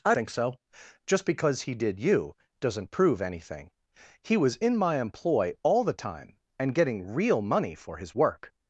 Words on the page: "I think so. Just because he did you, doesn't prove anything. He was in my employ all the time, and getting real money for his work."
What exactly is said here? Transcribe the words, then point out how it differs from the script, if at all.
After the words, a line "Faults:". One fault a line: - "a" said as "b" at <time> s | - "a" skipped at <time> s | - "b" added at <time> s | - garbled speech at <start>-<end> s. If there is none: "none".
"I think so. Just because he did you, doesn't prove anything. He was in my employ all the time, and getting real money for his work."
Faults:
none